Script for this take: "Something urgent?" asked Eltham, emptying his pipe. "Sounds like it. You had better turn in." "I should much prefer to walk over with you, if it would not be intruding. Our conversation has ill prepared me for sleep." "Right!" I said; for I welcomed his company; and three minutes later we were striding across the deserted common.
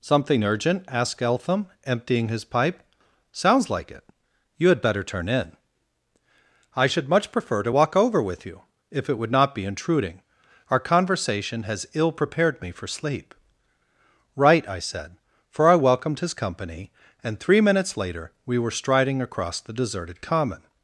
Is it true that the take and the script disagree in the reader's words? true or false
false